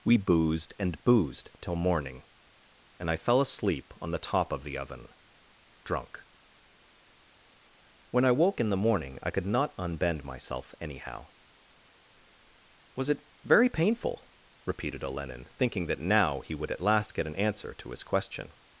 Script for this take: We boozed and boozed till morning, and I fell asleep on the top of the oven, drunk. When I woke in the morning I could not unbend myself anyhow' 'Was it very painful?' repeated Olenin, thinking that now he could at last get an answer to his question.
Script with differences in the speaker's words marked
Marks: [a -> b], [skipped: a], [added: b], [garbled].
We boozed and boozed till morning, and I fell asleep on the top of the oven, drunk. When I woke in the morning I could not unbend myself anyhow' 'Was it very painful?' repeated Olenin, thinking that now he [could -> would] at last get an answer to his question.